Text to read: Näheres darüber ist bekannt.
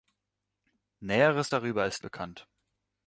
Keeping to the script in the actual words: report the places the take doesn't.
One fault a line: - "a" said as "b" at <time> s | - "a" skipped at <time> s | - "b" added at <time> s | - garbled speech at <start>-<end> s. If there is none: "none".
none